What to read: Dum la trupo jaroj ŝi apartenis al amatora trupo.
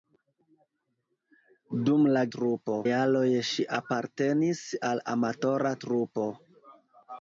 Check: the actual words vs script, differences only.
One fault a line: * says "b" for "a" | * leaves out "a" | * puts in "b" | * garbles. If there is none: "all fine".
all fine